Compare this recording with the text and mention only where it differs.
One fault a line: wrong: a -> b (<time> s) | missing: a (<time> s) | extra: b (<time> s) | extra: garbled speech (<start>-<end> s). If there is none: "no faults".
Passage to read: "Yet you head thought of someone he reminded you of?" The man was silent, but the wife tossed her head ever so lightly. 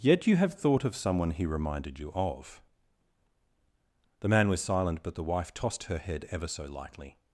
wrong: head -> have (0.3 s)